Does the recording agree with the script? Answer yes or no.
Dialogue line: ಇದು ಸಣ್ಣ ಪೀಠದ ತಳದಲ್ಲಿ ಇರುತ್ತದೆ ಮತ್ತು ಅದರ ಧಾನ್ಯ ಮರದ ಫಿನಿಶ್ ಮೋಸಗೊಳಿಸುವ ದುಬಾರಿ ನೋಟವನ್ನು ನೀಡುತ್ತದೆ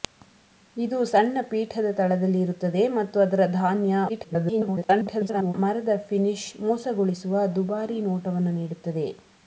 no